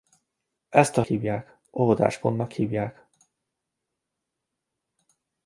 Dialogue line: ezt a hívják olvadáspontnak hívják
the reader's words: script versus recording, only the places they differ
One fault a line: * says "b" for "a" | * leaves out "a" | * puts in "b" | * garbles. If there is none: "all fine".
all fine